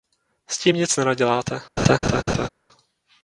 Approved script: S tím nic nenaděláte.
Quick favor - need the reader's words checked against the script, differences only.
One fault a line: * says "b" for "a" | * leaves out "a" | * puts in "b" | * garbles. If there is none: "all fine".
all fine